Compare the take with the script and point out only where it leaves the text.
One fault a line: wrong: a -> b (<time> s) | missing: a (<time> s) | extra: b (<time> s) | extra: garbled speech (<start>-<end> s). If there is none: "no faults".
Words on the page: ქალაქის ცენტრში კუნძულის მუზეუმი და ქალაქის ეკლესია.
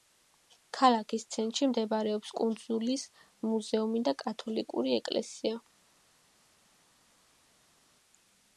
extra: მდებარეობს (1.7 s)
wrong: ქალაქის -> კათოლიკური (4.2 s)